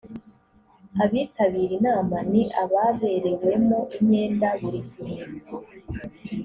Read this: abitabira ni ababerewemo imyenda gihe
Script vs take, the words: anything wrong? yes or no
yes